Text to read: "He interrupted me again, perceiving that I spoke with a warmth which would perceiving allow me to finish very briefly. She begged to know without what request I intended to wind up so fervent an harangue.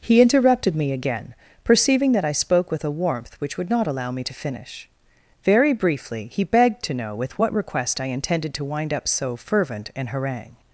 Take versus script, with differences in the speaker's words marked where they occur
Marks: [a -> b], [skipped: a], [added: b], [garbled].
"He interrupted me again, perceiving that I spoke with a warmth which would [perceiving -> not] allow me to finish very briefly. [She -> He] begged to know [without -> with] what request I intended to wind up so fervent an harangue.